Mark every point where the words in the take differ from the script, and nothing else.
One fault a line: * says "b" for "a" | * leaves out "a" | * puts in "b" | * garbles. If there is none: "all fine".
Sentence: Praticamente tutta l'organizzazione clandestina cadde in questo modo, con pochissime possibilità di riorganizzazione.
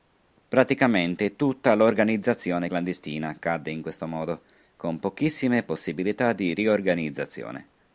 all fine